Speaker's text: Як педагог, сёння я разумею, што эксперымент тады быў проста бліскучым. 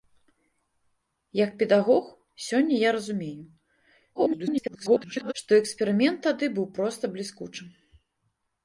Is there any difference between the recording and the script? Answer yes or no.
yes